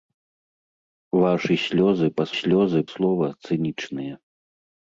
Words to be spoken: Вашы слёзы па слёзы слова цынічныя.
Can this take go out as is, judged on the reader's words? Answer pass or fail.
pass